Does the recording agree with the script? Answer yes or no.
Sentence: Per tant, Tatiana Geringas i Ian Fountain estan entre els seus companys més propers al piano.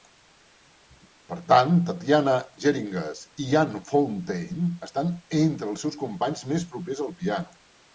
yes